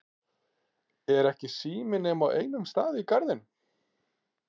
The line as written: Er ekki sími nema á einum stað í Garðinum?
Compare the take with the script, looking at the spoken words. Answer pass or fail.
pass